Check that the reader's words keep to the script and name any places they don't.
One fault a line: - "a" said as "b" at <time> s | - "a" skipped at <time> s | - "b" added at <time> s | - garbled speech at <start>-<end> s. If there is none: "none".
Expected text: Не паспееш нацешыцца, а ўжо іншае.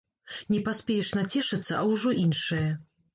none